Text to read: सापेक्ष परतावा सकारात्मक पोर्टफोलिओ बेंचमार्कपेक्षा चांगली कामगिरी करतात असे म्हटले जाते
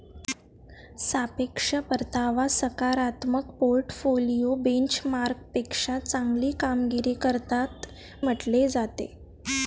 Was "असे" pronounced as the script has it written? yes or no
no